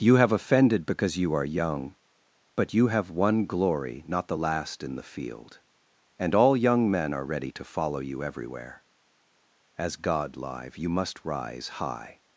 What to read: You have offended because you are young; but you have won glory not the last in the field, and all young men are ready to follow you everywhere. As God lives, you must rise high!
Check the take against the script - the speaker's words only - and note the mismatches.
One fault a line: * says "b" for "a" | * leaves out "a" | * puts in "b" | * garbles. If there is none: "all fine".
* says "live" for "lives"